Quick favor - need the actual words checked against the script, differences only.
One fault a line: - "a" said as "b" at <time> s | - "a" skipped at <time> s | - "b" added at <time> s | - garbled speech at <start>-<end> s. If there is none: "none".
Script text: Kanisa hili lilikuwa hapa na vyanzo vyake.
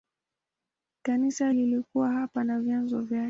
- "hili" skipped at 1.5 s